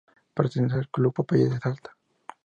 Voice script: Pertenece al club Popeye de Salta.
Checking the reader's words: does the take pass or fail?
pass